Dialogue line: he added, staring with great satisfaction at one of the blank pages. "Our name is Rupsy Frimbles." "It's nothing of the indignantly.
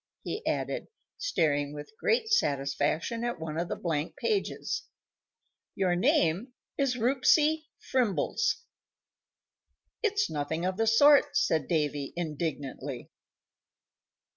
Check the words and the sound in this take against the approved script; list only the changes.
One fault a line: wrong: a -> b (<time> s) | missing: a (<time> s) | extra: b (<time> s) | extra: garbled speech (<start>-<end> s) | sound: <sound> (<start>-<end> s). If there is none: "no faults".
wrong: Our -> Your (5.8 s)
extra: sort said Davy (10.9 s)